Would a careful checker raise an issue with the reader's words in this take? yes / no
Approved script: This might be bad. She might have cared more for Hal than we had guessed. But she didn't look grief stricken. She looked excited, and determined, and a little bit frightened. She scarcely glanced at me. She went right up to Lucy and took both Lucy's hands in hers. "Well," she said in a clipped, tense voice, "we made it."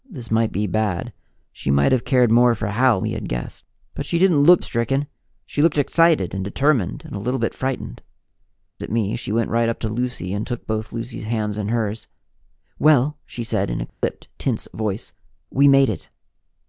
yes